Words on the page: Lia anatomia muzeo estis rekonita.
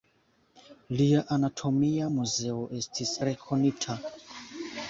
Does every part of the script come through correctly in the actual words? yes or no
yes